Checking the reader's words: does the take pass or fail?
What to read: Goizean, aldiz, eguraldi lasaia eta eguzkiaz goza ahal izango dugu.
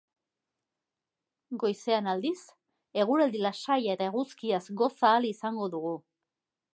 pass